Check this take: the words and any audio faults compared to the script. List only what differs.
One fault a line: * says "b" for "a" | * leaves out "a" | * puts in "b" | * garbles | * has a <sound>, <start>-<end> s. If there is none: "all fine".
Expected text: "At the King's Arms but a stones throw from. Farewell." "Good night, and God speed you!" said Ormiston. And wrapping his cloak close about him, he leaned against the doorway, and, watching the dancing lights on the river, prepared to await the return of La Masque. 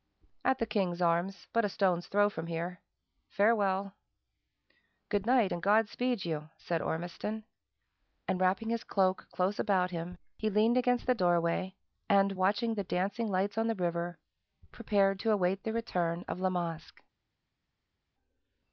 * puts in "here"